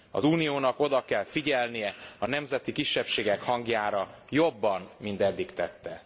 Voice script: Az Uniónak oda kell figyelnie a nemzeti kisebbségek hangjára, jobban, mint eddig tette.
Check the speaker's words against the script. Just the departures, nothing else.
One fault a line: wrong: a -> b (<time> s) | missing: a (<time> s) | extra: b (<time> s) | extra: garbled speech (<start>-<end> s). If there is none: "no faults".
no faults